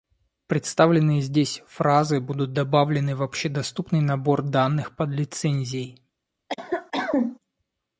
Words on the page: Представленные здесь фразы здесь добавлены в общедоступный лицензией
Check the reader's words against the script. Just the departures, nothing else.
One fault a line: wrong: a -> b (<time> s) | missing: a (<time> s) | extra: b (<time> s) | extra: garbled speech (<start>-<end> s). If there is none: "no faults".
wrong: здесь -> будут (2.2 s)
extra: набор данных под (4.0 s)